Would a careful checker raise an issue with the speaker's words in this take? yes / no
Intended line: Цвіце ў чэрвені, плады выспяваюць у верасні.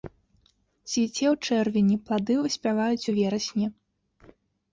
no